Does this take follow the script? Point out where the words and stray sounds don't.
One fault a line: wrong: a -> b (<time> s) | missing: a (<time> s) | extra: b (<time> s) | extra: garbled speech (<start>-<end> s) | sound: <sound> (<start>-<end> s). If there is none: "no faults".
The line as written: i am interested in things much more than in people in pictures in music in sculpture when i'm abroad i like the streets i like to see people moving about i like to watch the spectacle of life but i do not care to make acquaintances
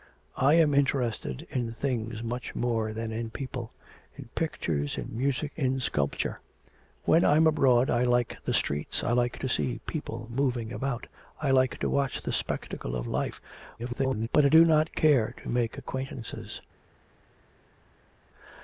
extra: garbled speech (13.8-14.3 s)